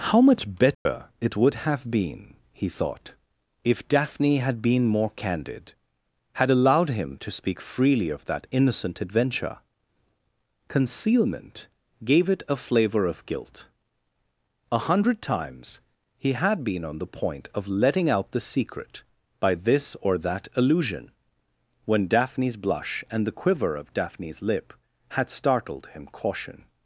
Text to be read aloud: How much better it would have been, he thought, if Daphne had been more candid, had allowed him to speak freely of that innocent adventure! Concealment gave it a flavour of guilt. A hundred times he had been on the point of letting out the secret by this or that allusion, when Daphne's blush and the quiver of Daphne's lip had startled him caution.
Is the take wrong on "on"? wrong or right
right